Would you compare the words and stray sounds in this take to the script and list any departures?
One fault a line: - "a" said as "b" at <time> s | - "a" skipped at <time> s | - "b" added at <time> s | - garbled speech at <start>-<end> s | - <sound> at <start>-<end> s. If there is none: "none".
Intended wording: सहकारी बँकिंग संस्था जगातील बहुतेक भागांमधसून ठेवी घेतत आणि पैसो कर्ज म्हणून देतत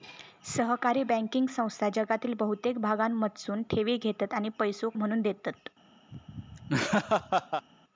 - "कर्ज" skipped at 4.9 s
- laugh at 6.1-7.7 s